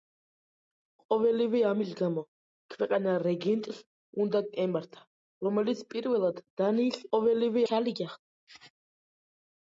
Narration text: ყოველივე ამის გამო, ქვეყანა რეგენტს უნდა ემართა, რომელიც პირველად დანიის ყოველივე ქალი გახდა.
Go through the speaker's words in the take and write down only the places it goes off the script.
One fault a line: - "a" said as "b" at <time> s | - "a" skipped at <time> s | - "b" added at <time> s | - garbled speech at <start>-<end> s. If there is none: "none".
none